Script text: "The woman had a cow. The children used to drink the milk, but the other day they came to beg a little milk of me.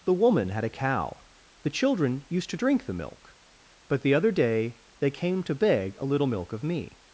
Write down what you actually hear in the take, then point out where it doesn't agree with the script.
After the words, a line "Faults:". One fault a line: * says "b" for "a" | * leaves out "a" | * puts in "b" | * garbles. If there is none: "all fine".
"The woman had a cow. The children used to drink the milk, but the other day they came to beg a little milk of me.
Faults:
all fine